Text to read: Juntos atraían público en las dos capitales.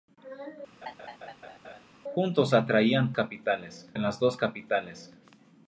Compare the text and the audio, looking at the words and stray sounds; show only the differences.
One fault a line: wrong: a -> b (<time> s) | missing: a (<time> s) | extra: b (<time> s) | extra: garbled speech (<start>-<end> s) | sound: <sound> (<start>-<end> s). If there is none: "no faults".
sound: laugh (0.8-1.8 s)
wrong: público -> capitales (3.1 s)